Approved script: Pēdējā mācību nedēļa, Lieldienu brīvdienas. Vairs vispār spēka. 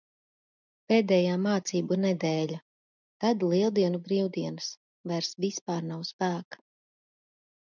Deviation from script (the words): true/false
true